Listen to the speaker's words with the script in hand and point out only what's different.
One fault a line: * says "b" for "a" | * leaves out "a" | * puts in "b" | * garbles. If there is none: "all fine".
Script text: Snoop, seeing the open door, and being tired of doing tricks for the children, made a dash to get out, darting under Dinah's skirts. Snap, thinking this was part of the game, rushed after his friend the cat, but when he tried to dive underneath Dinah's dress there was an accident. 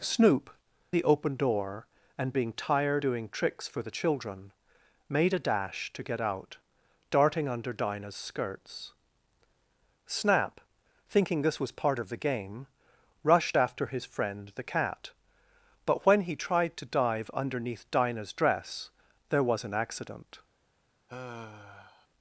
* leaves out "seeing"
* leaves out "of"